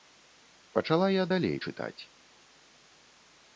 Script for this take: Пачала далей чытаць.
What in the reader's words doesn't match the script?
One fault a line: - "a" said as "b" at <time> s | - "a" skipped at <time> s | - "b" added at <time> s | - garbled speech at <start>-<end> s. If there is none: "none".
- "я" added at 1.1 s